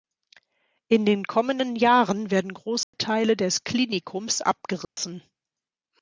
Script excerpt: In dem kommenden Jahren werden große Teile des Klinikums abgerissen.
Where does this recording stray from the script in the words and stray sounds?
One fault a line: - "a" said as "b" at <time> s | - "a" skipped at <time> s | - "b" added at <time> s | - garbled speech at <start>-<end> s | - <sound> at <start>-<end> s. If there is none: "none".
- "dem" said as "den" at 1.1 s
- dropout at 2.8-2.9 s
- dropout at 4.8-5.0 s